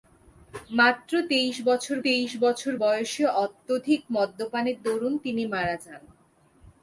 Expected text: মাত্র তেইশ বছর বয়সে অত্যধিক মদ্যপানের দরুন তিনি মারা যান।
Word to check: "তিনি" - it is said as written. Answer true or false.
true